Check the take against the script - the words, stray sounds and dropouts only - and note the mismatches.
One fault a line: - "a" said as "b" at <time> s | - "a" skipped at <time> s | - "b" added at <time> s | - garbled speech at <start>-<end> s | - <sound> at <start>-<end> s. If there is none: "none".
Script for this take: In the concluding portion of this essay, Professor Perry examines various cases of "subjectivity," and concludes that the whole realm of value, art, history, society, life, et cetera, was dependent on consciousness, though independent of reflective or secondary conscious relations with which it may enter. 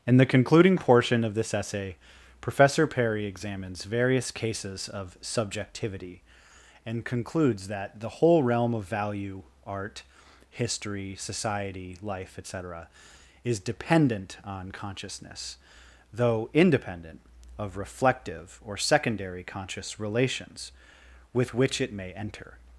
- "was" said as "is" at 13.4 s